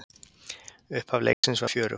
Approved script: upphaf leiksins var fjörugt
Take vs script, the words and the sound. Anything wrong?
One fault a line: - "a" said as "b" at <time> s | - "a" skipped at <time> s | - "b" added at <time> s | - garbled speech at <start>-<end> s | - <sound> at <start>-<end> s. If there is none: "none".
- dropout at 1.3-1.4 s